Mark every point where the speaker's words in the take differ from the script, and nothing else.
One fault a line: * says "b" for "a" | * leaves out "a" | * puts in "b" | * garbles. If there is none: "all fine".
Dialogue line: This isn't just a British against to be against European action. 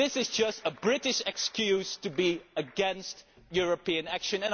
* says "is" for "isn't"
* says "excuse" for "against"